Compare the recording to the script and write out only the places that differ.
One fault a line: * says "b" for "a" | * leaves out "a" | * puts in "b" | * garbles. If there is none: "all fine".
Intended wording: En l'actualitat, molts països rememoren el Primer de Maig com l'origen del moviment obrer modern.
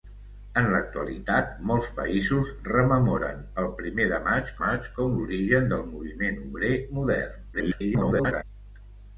* puts in "Maig"
* garbles